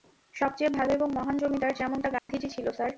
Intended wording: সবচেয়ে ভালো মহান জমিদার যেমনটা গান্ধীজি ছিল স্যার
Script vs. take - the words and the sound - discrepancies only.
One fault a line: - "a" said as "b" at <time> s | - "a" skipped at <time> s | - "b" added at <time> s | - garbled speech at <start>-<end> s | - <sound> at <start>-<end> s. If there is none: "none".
- "এবং" added at 0.9 s
- dropout at 2.2-2.3 s